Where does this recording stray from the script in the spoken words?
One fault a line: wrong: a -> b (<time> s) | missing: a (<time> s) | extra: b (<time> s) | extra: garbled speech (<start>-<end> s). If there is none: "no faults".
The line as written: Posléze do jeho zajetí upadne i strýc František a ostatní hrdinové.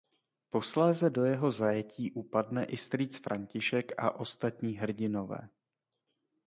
no faults